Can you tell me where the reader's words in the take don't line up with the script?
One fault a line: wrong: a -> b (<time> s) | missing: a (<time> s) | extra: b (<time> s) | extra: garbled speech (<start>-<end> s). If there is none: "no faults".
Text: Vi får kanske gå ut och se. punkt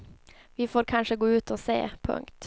no faults